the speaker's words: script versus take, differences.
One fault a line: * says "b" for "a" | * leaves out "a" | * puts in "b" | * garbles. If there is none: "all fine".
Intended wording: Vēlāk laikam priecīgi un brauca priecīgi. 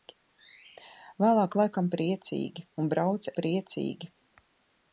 all fine